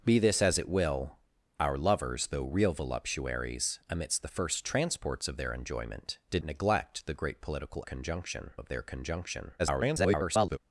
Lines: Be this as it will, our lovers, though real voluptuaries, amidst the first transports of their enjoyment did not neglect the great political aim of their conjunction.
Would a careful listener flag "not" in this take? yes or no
yes